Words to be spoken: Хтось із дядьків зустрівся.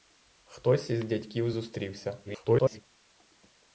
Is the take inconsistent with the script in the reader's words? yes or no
yes